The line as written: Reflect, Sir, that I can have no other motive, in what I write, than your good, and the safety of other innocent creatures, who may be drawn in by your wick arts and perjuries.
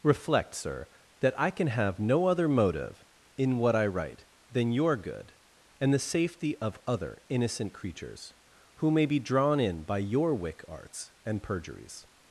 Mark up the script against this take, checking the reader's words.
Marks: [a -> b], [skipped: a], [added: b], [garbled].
Reflect, Sir, that I can have no other motive, in what I write, than your good, and the safety of other innocent creatures, who may be drawn in by your wick arts and perjuries.